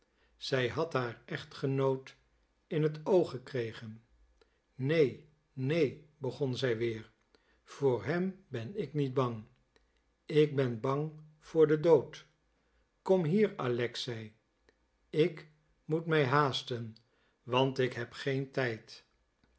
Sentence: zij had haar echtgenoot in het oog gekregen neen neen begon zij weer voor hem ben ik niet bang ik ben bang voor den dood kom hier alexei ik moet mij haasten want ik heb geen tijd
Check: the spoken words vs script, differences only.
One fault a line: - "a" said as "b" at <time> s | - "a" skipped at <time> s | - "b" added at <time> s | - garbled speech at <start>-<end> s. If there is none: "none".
none